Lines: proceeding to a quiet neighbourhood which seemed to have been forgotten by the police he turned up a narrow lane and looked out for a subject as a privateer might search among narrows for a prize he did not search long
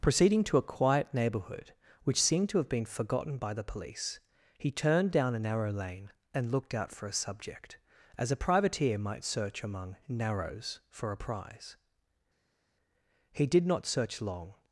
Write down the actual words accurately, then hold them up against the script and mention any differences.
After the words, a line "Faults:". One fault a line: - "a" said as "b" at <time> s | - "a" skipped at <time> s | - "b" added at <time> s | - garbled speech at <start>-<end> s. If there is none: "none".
proceeding to a quiet neighbourhood which seemed to have been forgotten by the police he turned down a narrow lane and looked out for a subject as a privateer might search among narrows for a prize he did not search long
Faults:
- "up" said as "down" at 5.1 s